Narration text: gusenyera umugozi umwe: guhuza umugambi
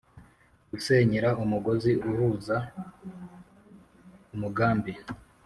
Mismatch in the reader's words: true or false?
true